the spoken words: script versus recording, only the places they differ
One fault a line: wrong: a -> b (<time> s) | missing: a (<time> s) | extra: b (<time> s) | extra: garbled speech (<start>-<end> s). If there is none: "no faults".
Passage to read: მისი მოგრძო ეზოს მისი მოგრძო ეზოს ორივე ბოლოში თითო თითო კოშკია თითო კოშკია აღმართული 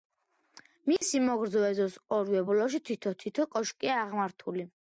missing: მისი მოგრძო ეზოს (2.0 s)
missing: თითო კოშკია (4.0 s)